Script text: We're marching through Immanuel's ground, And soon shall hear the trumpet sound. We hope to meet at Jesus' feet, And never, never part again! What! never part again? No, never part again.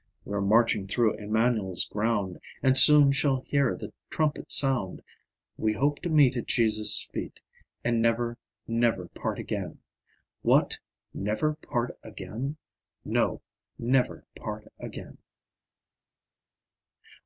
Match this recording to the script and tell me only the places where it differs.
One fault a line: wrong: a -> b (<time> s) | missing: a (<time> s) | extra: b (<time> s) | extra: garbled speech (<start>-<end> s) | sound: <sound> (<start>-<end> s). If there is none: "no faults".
no faults